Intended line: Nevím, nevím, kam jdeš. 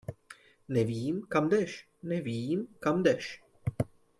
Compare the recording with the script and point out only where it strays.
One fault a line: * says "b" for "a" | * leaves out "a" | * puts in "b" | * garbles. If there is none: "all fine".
* puts in "kam jdeš"